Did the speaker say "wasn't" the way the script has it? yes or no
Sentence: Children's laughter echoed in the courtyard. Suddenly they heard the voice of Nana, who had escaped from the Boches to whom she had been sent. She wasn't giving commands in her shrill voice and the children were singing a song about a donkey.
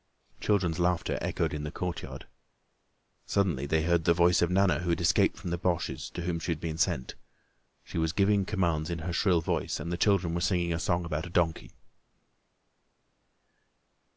no